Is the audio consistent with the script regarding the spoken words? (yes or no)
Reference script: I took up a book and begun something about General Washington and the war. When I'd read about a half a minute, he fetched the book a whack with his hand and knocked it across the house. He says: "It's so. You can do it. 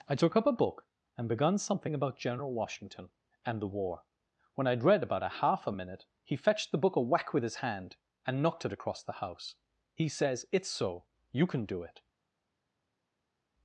yes